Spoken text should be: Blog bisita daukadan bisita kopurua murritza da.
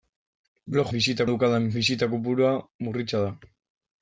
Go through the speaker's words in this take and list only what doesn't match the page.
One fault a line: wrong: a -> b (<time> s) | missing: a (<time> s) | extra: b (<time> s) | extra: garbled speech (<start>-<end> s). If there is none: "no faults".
no faults